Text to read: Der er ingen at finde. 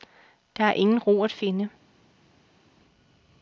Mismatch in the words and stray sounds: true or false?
true